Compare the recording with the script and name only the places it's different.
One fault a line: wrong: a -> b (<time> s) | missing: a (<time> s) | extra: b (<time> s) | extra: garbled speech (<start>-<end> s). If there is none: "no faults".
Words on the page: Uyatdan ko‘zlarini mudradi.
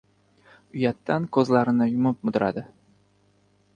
extra: yumib (1.9 s)